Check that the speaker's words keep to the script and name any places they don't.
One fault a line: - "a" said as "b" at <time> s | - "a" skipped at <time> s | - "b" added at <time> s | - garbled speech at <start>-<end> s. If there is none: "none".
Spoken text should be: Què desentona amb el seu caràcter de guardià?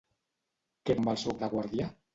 - "desentona" skipped at 0.9 s
- "caràcter" skipped at 1.4 s